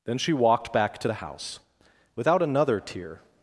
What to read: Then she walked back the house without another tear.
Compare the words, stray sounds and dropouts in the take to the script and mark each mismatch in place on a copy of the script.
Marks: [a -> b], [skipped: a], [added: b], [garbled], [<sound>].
Then she walked back [added: to] the house without another tear.